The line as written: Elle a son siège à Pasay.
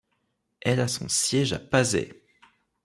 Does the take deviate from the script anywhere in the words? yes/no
no